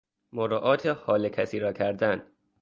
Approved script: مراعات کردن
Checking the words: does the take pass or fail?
fail